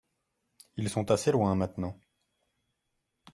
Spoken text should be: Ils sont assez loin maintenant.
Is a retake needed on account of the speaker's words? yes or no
no